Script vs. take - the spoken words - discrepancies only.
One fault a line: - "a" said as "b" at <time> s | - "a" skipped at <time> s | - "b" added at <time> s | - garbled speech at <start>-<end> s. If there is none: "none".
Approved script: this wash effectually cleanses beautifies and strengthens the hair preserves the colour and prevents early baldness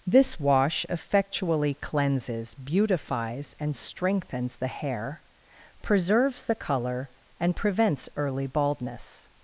none